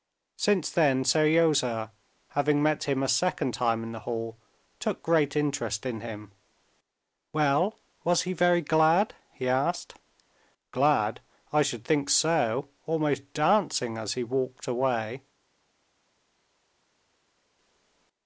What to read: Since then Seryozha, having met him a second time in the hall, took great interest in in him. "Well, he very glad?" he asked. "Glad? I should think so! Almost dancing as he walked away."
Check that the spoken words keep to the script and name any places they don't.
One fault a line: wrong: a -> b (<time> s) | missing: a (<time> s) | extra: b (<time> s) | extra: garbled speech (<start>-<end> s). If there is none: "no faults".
missing: in (6.0 s)
extra: was (8.0 s)